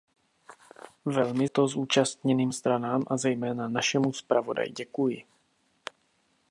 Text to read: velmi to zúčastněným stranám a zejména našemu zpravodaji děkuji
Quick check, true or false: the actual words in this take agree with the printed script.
true